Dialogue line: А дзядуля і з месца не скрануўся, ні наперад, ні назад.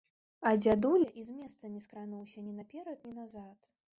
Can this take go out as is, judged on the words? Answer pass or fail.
pass